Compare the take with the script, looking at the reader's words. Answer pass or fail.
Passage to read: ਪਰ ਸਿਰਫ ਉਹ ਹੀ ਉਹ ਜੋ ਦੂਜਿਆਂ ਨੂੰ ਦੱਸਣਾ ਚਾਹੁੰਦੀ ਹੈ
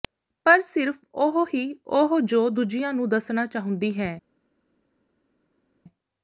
pass